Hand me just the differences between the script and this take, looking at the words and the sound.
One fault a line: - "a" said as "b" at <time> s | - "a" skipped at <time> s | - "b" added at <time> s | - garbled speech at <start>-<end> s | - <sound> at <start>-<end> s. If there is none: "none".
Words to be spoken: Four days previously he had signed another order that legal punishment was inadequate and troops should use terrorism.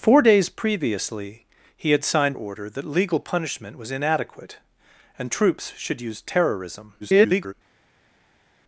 - "another" skipped at 2.4 s
- garbled speech at 7.0-7.5 s